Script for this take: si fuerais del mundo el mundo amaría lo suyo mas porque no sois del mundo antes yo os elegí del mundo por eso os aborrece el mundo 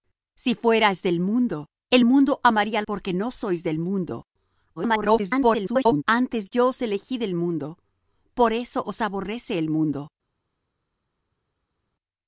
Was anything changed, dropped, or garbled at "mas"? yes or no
yes